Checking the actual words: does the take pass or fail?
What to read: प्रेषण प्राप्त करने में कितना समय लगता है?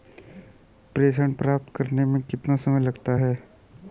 pass